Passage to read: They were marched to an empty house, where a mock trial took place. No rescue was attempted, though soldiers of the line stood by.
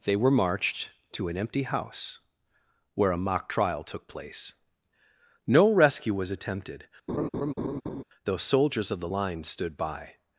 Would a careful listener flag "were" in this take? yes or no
no